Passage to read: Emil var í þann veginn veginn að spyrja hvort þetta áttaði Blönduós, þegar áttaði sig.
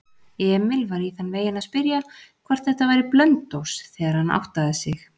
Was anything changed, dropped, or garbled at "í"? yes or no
no